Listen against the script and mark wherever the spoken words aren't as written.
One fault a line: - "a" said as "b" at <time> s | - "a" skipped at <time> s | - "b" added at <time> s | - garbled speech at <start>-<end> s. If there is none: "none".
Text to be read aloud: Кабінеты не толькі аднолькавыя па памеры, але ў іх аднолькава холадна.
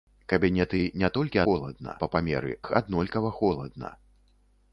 - "аднолькавыя" said as "холадна" at 1.4 s
- "але ў" skipped at 2.5 s